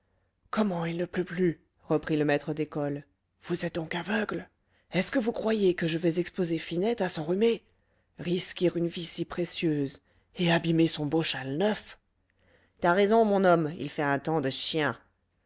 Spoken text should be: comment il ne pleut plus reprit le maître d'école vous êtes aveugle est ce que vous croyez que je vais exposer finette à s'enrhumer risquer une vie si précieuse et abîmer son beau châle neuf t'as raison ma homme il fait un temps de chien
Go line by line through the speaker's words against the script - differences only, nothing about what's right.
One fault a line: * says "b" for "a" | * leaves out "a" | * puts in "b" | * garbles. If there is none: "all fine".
* puts in "donc"
* says "mon" for "ma"